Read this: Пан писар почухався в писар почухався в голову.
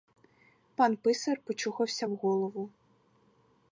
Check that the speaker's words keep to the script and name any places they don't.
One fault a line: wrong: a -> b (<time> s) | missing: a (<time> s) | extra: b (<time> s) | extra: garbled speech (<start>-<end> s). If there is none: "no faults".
missing: писар почухався в (2.2 s)